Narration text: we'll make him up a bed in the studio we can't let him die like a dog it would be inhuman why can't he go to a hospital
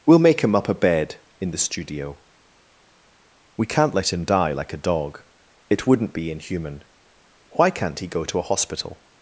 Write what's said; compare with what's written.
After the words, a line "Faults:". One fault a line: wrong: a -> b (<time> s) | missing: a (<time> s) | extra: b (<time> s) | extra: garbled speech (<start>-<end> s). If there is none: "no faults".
we'll make him up a bed in the studio we can't let him die like a dog it wouldn't be inhuman why can't he go to a hospital
Faults:
wrong: would -> wouldn't (5.9 s)